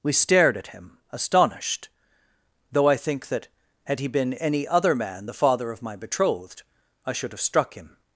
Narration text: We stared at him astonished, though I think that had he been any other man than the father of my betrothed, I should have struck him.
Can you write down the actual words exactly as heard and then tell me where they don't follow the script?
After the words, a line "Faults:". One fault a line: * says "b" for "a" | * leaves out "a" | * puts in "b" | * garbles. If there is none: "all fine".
We stared at him astonished, though I think that had he been any other man the father of my betrothed, I should have struck him.
Faults:
* leaves out "than"